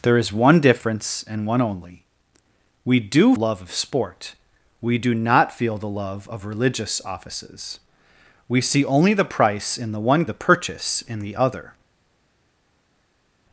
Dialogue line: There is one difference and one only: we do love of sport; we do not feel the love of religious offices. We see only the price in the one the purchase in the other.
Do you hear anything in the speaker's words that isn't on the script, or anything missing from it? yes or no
no